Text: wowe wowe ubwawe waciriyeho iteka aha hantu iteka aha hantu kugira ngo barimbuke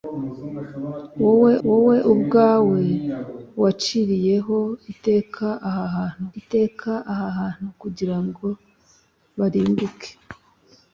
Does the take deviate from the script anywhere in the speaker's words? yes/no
no